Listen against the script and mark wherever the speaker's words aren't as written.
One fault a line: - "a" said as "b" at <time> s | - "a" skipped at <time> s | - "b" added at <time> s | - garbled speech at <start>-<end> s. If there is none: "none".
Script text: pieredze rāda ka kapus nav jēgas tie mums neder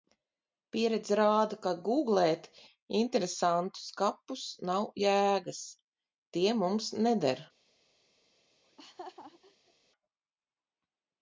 - "gūglēt interesantus" added at 1.9 s